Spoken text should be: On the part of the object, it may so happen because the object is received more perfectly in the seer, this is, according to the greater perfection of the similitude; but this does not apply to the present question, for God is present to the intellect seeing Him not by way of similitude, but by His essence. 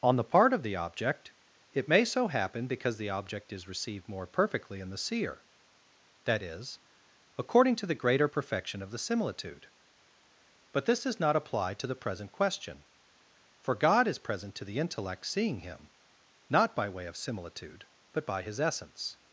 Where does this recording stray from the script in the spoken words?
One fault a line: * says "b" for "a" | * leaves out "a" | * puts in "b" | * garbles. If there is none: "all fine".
* says "that" for "this"